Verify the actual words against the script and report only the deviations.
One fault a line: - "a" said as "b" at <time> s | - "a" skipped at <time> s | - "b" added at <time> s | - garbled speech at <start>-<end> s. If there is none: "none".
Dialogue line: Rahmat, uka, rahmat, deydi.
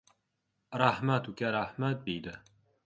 none